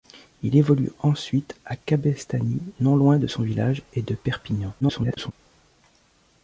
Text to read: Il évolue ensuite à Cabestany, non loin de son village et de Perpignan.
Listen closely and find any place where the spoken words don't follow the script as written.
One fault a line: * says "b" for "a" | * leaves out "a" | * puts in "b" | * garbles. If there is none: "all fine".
* garbles